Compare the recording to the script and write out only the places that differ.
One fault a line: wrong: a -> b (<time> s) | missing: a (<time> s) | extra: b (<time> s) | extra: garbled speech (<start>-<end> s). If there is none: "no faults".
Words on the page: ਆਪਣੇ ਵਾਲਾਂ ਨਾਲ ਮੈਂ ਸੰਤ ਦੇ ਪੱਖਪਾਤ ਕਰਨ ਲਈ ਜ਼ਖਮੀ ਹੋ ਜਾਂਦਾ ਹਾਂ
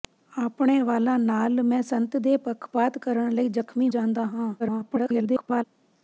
missing: ਹੋ (3.9 s)
extra: garbled speech (4.6-5.6 s)